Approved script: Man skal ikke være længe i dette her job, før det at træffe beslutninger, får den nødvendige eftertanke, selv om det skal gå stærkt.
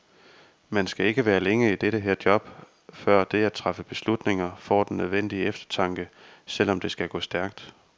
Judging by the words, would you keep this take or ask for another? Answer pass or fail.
pass